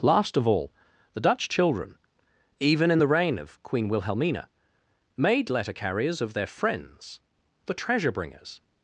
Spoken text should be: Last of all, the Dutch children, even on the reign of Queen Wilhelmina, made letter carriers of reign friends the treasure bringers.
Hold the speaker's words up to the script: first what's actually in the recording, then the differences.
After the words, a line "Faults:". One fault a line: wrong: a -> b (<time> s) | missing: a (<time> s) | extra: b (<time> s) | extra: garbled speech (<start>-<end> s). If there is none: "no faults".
Last of all, the Dutch children, even in the reign of Queen Wilhelmina, made letter carriers of their friends the treasure bringers.
Faults:
wrong: on -> in (2.9 s)
wrong: reign -> their (6.3 s)